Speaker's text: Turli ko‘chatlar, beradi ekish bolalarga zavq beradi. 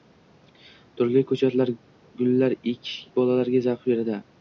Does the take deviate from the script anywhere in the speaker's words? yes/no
yes